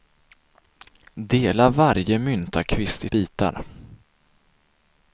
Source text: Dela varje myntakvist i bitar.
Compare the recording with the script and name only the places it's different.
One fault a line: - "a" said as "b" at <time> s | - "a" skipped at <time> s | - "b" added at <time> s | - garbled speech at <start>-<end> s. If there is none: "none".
none